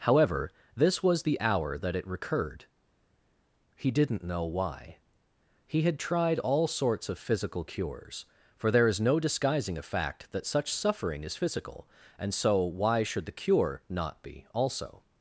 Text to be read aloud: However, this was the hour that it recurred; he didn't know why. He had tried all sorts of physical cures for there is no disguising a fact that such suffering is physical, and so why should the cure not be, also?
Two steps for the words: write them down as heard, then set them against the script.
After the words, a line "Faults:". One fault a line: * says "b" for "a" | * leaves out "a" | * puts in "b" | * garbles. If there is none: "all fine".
However, this was the hour that it recurred; he didn't know why. He had tried all sorts of physical cures for there is no disguising a fact that such suffering is physical, and so why should the cure not be, also?
Faults:
all fine